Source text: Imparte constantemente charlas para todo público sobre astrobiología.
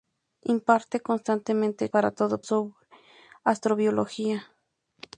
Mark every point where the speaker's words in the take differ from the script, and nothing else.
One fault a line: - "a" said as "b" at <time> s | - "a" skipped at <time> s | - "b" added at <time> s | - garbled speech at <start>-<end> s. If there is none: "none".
- "charlas" skipped at 1.9 s
- "público" skipped at 2.4 s